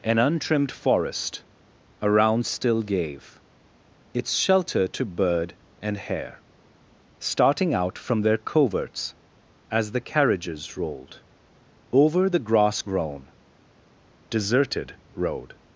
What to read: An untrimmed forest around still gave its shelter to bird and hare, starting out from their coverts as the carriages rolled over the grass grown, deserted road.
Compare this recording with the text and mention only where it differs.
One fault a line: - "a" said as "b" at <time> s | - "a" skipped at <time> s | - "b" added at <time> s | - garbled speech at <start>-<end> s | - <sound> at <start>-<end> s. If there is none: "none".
none